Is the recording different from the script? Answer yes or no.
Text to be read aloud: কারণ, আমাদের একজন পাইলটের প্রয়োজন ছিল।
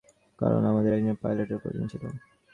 no